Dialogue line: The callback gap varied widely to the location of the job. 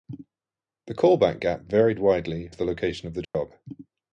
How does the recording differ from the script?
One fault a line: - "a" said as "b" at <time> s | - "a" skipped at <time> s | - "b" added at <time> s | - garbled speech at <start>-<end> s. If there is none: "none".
none